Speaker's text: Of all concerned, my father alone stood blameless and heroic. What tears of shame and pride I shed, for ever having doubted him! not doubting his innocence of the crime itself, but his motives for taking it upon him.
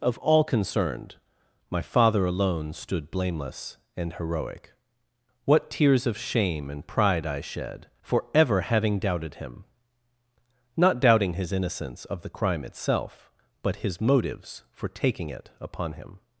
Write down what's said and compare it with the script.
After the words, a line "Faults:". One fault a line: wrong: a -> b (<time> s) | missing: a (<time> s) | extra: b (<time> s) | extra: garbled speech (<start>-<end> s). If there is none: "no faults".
Of all concerned, my father alone stood blameless and heroic. What tears of shame and pride I shed, for ever having doubted him! not doubting his innocence of the crime itself, but his motives for taking it upon him.
Faults:
no faults